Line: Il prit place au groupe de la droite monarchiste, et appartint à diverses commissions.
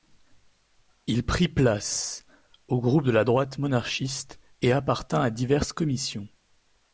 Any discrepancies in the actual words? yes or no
no